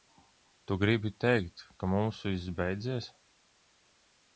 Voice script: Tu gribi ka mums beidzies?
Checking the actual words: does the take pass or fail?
fail